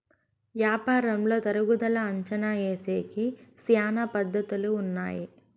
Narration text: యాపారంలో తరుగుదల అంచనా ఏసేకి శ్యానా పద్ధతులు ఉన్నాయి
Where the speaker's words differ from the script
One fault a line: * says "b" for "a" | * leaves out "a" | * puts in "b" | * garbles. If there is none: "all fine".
all fine